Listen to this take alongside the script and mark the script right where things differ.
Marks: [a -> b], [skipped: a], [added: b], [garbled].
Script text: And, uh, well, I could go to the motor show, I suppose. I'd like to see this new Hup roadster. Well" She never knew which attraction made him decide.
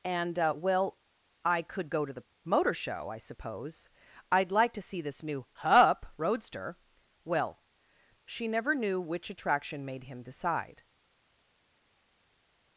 And, uh, well, I could go to the motor show, I suppose. I'd like to see this new Hup roadster. Well" She never knew which attraction made him decide.